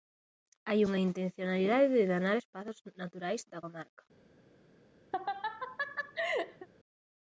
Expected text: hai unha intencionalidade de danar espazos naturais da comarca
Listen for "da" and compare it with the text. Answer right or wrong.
right